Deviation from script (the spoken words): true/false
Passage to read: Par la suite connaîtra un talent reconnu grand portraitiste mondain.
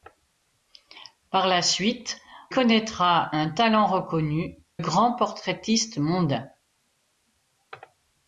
false